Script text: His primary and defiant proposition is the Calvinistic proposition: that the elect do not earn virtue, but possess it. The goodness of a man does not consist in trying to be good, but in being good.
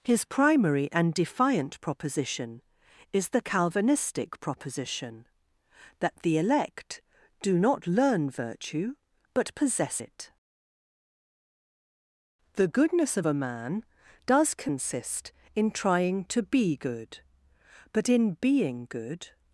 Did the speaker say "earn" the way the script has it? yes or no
no